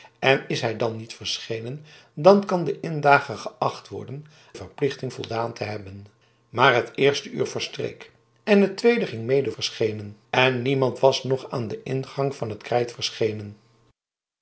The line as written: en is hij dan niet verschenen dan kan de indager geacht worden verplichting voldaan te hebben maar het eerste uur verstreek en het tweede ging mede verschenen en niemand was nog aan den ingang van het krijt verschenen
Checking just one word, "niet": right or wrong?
right